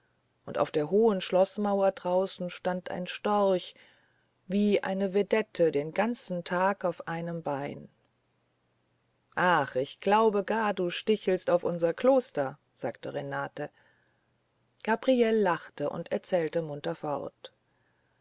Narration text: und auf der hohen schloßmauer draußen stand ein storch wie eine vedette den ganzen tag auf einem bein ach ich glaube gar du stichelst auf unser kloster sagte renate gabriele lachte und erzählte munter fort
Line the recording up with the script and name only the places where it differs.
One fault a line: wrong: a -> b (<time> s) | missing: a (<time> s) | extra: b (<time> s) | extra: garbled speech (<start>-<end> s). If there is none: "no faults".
no faults